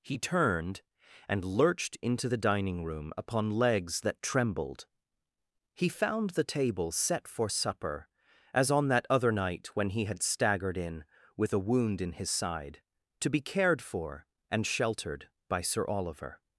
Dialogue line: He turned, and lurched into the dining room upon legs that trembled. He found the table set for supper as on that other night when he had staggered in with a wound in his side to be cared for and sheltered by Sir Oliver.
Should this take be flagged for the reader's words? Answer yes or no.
no